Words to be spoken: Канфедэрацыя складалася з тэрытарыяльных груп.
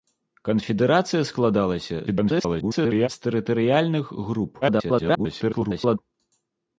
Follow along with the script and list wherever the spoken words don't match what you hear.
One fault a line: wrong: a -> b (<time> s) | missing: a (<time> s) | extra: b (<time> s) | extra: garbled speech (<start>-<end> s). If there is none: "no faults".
extra: garbled speech (2.1-3.1 s)
extra: garbled speech (4.6-6.0 s)